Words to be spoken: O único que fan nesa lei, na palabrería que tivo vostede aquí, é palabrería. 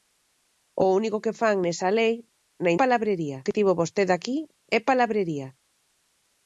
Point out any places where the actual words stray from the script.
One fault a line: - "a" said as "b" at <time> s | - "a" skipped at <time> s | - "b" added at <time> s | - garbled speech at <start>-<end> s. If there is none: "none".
none